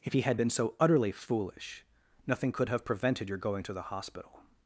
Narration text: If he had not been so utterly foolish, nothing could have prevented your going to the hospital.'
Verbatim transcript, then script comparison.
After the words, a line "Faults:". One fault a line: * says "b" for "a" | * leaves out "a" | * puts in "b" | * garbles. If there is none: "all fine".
If he had been so utterly foolish, nothing could have prevented your going to the hospital.'
Faults:
* leaves out "not"